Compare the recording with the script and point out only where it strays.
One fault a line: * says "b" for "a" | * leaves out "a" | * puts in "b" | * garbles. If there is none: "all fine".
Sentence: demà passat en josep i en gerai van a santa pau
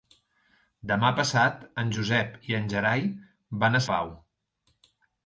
* leaves out "santa"